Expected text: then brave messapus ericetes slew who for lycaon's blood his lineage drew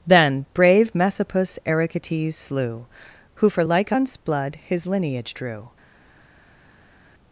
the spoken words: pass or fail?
pass